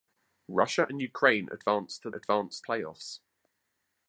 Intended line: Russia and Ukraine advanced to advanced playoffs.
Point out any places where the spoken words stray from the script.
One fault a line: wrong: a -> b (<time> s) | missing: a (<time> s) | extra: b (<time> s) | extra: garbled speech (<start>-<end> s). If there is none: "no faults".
no faults